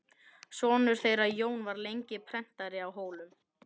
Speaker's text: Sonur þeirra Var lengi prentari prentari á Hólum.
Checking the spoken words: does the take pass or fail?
fail